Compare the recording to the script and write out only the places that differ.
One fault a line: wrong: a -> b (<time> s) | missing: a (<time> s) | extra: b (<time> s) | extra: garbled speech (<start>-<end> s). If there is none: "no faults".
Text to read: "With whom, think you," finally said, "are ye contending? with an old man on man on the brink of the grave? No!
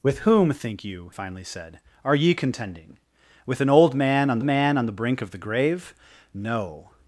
no faults